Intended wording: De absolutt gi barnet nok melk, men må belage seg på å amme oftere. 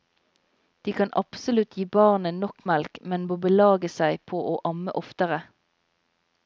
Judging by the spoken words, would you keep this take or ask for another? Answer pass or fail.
fail